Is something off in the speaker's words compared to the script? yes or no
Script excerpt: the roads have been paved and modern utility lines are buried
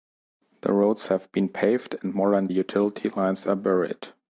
no